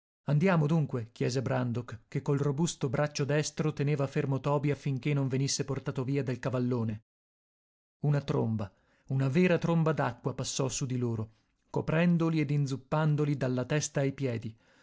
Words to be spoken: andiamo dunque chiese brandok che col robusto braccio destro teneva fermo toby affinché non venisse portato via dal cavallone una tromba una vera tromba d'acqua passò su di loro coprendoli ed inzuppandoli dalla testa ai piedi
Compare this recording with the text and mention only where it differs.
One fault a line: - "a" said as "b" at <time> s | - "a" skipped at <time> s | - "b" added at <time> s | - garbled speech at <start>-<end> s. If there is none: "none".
none